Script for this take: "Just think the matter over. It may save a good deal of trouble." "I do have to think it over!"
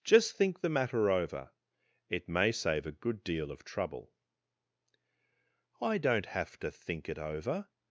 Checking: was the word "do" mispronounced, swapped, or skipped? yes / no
yes